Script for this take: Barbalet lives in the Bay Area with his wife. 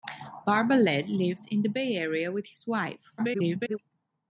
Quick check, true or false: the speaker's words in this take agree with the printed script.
false